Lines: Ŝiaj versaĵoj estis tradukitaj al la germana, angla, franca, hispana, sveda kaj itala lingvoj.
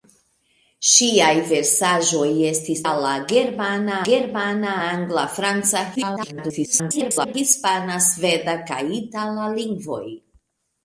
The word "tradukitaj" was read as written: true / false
false